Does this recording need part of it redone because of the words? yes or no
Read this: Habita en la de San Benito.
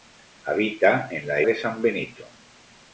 no